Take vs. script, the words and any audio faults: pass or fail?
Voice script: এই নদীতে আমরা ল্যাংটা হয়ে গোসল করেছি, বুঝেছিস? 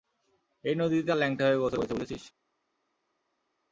fail